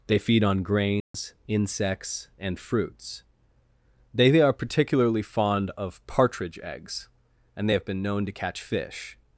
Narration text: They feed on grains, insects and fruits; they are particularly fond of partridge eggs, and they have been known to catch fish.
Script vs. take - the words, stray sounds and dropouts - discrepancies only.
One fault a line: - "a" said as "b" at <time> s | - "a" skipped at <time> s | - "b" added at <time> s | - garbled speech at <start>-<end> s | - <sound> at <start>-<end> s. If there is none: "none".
- dropout at 1.0-1.1 s